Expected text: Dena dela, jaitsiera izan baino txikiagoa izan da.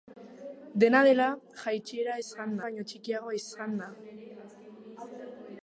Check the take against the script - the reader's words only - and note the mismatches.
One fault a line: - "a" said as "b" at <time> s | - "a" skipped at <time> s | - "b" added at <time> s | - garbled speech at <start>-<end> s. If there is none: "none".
none